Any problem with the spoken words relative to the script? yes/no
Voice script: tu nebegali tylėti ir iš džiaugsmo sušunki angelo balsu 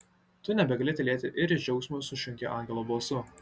no